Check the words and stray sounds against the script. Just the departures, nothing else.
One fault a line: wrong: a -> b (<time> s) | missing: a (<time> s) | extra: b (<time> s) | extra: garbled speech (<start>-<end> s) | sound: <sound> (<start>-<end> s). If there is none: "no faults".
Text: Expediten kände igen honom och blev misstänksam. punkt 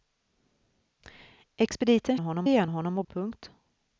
wrong: kände -> honom (2.2 s)
missing: blev misstänksam (3.1 s)